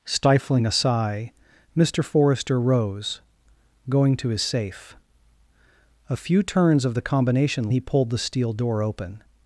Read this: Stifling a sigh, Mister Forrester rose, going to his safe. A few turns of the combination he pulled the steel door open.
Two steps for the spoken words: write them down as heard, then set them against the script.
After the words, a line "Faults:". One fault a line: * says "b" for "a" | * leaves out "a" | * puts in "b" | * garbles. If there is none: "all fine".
Stifling a sigh, Mister Forrester rose, going to his safe. A few turns of the combination he pulled the steel door open.
Faults:
all fine